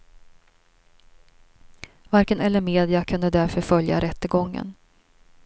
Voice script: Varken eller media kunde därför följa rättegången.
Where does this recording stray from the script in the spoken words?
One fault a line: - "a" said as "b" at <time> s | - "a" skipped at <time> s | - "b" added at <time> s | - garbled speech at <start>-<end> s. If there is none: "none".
none